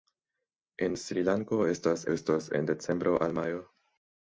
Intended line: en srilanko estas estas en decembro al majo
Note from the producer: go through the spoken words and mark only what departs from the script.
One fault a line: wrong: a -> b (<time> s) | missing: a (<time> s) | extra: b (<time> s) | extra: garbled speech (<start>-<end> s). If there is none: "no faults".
no faults